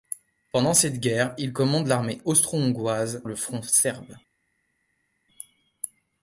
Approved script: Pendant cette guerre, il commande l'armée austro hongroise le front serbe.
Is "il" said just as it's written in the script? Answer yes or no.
yes